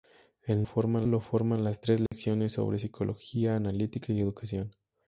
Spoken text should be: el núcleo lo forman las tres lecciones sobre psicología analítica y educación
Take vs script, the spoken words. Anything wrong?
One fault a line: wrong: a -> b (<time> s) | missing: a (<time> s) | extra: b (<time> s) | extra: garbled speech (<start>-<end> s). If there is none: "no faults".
wrong: núcleo -> forman (0.6 s)